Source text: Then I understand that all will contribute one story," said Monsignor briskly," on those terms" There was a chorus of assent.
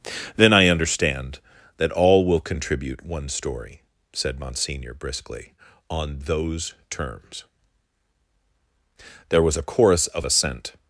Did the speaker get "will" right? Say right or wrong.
right